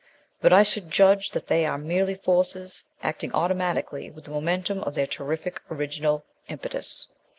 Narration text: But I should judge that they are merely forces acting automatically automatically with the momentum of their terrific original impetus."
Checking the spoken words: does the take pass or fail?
fail